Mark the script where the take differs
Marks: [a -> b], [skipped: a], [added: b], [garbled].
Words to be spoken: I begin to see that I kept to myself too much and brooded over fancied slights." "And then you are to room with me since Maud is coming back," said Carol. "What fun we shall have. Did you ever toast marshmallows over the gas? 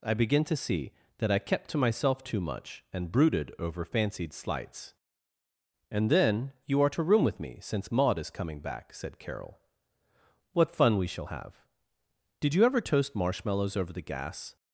I begin to see that I kept to myself too much and brooded over fancied slights." "And then you are to room with me since Maud is coming back," said Carol. "What fun we shall have. Did you ever toast marshmallows over the gas?